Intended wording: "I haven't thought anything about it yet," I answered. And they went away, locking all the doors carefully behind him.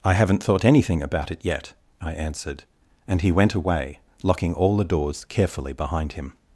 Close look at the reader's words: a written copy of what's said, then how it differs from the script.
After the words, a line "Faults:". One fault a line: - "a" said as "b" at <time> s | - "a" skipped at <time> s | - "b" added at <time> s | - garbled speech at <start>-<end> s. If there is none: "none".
"I haven't thought anything about it yet," I answered. And he went away, locking all the doors carefully behind him.
Faults:
- "they" said as "he" at 3.2 s